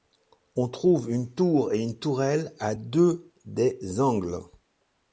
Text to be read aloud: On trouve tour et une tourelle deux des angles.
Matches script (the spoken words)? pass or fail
fail